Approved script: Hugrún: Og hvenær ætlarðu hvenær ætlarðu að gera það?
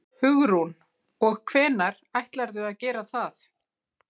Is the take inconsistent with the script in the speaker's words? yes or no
yes